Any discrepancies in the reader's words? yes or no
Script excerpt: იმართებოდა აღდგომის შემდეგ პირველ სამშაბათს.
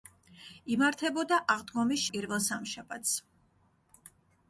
yes